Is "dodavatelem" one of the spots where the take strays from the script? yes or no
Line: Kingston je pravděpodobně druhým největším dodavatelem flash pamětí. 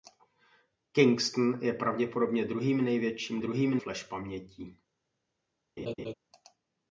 yes